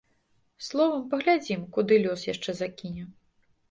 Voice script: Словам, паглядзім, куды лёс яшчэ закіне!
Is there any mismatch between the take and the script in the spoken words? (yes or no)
no